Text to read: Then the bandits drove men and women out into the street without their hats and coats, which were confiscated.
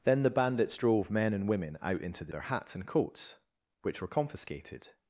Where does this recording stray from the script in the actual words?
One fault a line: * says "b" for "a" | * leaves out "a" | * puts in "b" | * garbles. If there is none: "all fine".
* leaves out "street without"